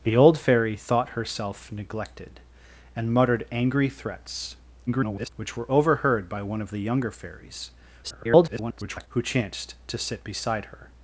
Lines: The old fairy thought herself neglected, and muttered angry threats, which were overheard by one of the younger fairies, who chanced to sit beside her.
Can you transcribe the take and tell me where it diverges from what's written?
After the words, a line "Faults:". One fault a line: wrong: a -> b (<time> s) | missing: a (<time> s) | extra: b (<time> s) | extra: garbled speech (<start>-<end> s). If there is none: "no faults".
The old fairy thought herself neglected, and muttered angry threats, [garbled] which were overheard by one of the younger fairies, [garbled] who chanced to sit beside her.
Faults:
extra: garbled speech (4.9-5.3 s)
extra: garbled speech (8.0-9.1 s)